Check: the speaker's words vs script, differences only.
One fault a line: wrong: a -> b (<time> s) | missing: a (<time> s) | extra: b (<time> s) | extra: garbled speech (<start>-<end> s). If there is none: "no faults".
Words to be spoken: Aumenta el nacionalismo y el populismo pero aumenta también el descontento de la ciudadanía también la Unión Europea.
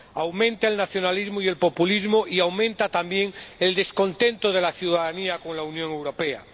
wrong: pero -> y (2.3 s)
wrong: también -> con (5.4 s)